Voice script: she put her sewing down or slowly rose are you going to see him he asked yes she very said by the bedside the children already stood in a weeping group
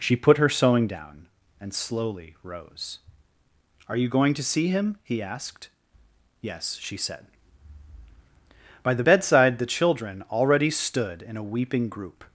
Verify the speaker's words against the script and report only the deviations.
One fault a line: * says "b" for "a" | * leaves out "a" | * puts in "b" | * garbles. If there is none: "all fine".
* says "and" for "or"
* leaves out "very"